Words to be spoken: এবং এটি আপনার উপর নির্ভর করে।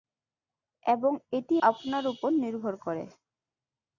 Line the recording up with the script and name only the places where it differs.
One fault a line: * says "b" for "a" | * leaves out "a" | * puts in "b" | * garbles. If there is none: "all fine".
all fine